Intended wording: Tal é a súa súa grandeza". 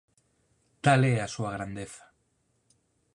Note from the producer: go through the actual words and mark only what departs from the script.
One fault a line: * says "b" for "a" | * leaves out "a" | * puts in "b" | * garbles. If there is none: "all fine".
* leaves out "súa"